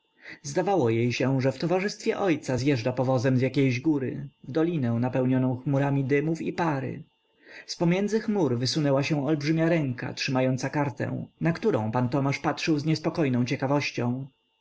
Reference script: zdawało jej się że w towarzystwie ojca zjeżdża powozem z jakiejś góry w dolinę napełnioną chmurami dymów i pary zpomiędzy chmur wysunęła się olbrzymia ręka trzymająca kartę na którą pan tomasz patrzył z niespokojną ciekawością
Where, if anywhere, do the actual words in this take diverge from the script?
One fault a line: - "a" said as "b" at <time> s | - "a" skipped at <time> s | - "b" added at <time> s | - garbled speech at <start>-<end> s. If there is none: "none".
none